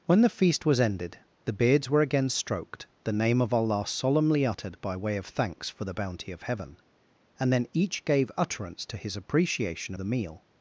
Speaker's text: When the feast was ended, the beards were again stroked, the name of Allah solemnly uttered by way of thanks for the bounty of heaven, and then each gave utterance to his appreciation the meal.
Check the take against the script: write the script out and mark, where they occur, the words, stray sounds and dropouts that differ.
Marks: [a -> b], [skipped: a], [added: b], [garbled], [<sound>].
When the feast was ended, the beards were again stroked, the name of Allah solemnly uttered by way of thanks for the bounty of heaven, and then each gave utterance to his appreciation the meal.